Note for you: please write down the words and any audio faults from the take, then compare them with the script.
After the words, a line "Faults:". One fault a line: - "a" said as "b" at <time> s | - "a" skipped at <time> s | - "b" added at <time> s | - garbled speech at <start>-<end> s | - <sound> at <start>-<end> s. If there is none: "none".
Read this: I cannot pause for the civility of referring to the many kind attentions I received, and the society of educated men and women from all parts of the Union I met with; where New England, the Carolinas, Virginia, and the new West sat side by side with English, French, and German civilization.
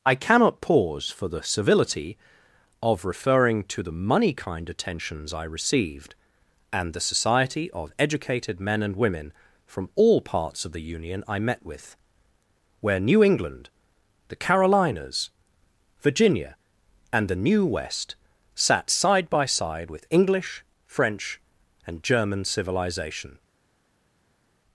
I cannot pause for the civility of referring to the money kind attentions I received, and the society of educated men and women from all parts of the Union I met with; where New England, the Carolinas, Virginia, and the new West sat side by side with English, French, and German civilization.
Faults:
- "many" said as "money" at 3.9 s